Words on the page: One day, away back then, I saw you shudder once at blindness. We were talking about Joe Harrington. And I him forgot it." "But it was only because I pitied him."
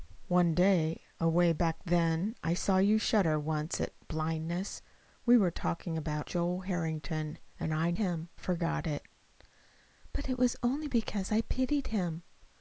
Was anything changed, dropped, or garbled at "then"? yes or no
no